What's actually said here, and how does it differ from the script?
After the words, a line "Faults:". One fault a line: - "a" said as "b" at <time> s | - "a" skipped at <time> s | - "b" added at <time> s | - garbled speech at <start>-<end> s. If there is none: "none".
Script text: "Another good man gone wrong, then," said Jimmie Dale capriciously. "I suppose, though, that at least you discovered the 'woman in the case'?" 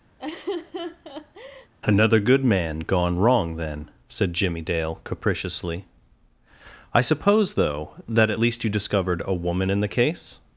"Another good man gone wrong, then," said Jimmie Dale capriciously. "I suppose, though, that at least you discovered a 'woman in the case'?"
Faults:
- "the" said as "a" at 9.2 s